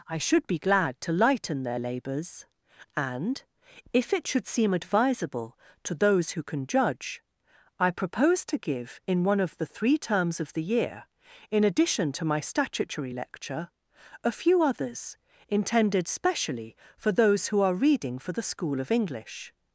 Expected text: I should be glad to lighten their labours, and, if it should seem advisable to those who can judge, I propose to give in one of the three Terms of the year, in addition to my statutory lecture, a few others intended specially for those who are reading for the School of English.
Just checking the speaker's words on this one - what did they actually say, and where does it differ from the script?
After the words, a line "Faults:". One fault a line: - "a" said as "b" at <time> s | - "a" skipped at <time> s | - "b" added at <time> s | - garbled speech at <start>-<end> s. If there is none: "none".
I should be glad to lighten their labours, and, if it should seem advisable to those who can judge, I propose to give in one of the three Terms of the year, in addition to my statutory lecture, a few others intended specially for those who are reading for the School of English.
Faults:
none